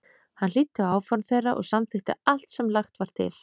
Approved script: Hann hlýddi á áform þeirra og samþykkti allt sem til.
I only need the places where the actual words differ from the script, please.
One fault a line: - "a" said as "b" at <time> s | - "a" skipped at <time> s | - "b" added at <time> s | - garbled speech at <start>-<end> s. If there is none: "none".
- "lagt var" added at 2.8 s